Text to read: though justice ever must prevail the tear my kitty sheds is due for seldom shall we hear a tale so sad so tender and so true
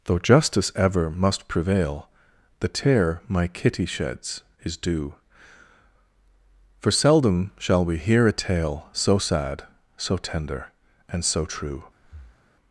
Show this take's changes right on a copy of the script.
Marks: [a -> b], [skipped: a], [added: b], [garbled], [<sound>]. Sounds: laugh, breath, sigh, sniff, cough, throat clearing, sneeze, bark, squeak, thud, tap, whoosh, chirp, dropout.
though justice ever must prevail the tear my kitty sheds is due for seldom shall we hear a tale so sad so tender and so true [breath]